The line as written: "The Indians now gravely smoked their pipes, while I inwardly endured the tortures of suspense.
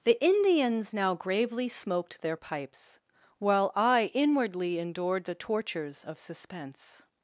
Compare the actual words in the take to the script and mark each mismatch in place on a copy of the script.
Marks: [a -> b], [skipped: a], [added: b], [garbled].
"The Indians now gravely smoked their pipes, while I inwardly endured the tortures of suspense.